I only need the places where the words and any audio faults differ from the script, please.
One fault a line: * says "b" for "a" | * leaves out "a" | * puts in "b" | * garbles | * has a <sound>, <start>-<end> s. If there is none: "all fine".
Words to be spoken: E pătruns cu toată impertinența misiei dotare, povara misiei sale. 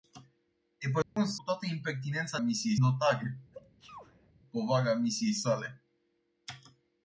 * has a dropout, 1.0-1.2 s
* has a sneeze, 3.5-4.3 s